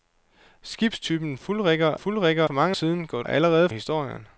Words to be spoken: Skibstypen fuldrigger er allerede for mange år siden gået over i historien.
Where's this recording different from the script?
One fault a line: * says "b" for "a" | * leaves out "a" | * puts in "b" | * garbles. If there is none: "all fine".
* says "fuldrigger" for "allerede"
* leaves out "år"
* says "allerede" for "over"